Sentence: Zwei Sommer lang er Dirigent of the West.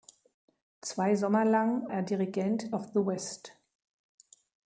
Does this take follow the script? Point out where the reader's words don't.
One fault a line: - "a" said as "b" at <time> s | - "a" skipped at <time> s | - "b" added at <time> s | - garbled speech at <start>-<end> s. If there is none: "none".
none